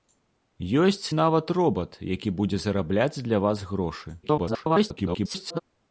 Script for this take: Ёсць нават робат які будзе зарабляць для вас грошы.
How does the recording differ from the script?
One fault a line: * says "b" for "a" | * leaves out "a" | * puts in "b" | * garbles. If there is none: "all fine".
* garbles